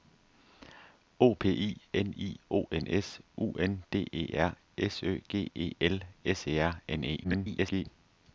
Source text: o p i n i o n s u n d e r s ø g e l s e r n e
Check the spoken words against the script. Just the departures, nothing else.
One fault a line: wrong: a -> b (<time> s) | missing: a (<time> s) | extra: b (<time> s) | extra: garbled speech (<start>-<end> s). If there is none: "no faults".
extra: garbled speech (7.2-7.9 s)